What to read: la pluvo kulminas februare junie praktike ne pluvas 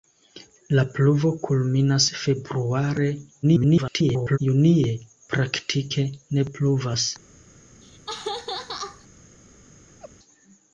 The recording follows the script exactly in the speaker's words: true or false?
false